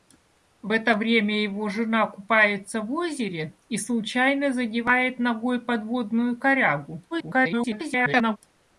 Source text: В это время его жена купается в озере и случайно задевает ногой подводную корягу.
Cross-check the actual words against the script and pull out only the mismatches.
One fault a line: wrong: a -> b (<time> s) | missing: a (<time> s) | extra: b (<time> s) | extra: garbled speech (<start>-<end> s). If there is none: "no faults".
extra: garbled speech (7.1-8.4 s)